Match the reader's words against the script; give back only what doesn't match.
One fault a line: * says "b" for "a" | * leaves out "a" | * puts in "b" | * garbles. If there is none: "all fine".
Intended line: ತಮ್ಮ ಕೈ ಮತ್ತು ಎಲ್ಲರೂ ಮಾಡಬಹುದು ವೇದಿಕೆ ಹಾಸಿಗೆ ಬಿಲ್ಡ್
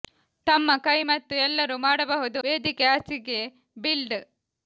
all fine